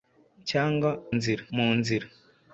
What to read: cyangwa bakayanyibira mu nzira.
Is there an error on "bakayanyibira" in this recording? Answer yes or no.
yes